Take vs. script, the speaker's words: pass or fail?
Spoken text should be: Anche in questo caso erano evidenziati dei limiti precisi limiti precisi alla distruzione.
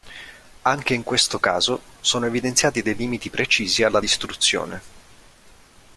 fail